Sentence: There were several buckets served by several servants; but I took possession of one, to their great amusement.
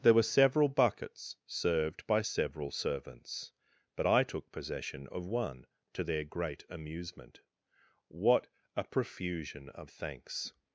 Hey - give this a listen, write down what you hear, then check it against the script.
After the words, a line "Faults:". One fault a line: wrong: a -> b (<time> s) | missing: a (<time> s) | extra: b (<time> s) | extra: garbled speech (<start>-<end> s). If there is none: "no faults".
There were several buckets served by several servants; but I took possession of one, to their great amusement. What a profusion of thanks
Faults:
extra: What a profusion of thanks (8.1 s)